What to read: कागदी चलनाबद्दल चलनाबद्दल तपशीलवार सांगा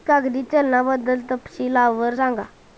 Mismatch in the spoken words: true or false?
true